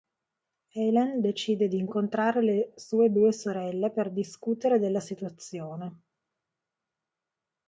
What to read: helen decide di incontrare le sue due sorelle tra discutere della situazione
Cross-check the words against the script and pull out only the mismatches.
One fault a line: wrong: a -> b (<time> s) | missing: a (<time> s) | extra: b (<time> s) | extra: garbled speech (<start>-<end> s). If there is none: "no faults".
wrong: tra -> per (3.9 s)